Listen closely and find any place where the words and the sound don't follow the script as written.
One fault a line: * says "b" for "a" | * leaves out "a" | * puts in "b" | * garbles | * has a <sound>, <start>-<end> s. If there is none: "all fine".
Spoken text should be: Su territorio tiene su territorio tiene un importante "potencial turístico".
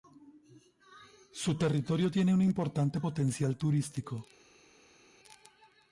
* leaves out "su territorio tiene"